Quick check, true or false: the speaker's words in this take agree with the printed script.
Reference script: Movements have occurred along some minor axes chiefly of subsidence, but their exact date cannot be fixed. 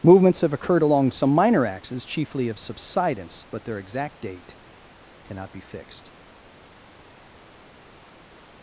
true